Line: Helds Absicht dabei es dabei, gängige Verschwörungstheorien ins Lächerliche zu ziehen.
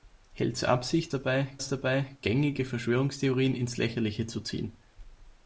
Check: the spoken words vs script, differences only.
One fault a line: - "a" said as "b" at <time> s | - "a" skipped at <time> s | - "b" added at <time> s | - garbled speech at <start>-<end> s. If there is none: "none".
none